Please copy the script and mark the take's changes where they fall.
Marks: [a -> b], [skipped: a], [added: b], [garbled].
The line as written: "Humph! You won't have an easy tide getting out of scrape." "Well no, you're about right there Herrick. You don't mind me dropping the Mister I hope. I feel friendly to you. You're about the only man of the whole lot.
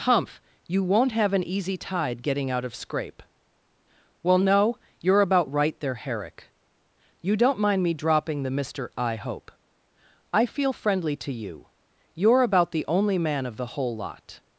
"Humph! You won't have an easy tide getting out of scrape." "Well no, you're about right there Herrick. You don't mind me dropping the Mister I hope. I feel friendly to you. You're about the only man of the whole lot.